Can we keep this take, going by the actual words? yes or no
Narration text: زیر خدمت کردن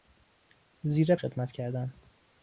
yes